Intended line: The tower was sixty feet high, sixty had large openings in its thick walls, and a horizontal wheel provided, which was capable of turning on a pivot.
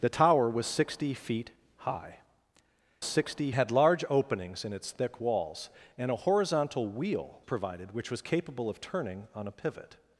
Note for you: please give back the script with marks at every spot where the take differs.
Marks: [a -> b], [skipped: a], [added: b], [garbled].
The tower was sixty feet high, sixty had large openings in its thick walls, and a horizontal wheel provided, which was capable of turning on a pivot.